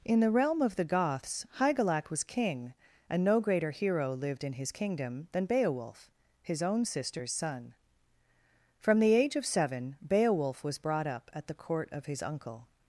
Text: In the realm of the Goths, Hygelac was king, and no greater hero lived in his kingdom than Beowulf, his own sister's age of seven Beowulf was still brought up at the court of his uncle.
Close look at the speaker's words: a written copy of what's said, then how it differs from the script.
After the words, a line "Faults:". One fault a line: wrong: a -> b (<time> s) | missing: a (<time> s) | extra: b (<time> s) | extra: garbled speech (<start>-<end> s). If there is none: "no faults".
In the realm of the Goths, Hygelac was king, and no greater hero lived in his kingdom than Beowulf, his own sister's son. From the age of seven Beowulf was brought up at the court of his uncle.
Faults:
extra: son From the (7.3 s)
missing: still (10.8 s)